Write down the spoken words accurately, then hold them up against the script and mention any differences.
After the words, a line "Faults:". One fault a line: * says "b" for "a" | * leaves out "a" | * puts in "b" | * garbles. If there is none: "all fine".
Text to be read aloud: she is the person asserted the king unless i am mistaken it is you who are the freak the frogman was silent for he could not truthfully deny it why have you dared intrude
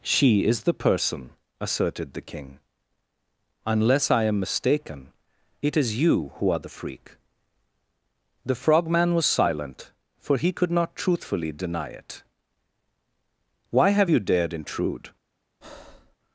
she is the person asserted the king unless i am mistaken it is you who are the freak the frogman was silent for he could not truthfully deny it why have you dared intrude
Faults:
all fine